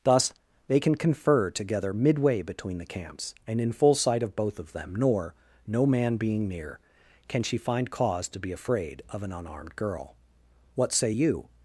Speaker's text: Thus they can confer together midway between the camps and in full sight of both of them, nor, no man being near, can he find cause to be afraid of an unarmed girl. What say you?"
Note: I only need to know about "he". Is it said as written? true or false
false